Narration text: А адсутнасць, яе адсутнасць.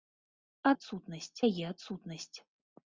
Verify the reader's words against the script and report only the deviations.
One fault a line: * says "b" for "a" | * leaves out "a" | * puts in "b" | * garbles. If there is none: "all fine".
all fine